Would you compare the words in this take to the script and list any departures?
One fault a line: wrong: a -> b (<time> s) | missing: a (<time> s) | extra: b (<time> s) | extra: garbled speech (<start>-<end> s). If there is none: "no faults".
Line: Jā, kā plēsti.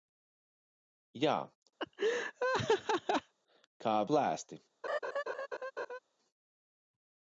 no faults